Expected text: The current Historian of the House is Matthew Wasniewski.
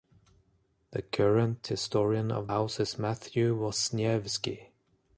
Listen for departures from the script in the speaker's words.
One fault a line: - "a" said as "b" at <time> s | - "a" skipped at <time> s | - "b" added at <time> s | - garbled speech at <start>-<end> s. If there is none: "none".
- "the" skipped at 2.5 s